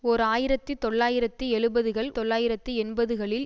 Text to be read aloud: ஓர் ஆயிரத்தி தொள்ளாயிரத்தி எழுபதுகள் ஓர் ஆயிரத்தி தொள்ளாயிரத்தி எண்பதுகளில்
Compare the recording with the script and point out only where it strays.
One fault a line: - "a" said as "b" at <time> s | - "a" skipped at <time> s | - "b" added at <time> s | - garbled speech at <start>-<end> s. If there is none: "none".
- "ஓர் ஆயிரத்தி" skipped at 2.1 s